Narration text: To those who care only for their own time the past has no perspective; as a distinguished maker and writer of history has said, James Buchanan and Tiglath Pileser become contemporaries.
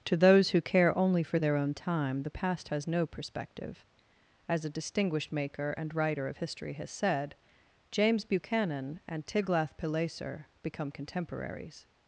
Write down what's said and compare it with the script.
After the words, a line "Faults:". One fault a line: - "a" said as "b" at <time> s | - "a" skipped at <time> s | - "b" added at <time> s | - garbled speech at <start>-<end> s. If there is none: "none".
To those who care only for their own time the past has no perspective; as a distinguished maker and writer of history has said, James Buchanan and Tiglath Pileser become contemporaries.
Faults:
none